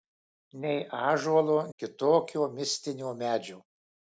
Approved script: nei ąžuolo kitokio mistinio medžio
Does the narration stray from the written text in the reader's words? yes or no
no